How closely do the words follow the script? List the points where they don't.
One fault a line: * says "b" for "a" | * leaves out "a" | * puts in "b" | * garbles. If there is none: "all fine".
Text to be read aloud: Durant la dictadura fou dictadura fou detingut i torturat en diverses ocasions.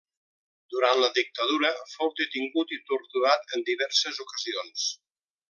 * leaves out "dictadura fou"